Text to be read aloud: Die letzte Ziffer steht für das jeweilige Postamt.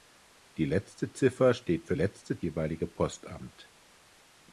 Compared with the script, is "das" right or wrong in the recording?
wrong